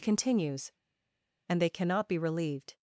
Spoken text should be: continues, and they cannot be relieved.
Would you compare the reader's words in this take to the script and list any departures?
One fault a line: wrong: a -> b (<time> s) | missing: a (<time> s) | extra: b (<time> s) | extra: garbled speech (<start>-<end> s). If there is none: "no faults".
no faults